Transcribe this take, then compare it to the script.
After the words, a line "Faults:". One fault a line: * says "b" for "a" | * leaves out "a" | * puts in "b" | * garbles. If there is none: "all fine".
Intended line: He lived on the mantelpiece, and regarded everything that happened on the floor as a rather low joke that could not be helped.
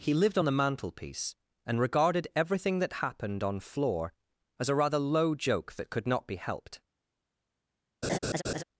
He lived on the mantelpiece, and regarded everything that happened on floor as a rather low joke that could not be helped.
Faults:
* leaves out "the"